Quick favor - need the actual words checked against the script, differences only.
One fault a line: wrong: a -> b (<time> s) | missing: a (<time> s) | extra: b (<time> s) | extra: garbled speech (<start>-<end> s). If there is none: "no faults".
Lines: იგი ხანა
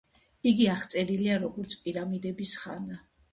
extra: აღწერილია როგორც პირამიდების (0.8 s)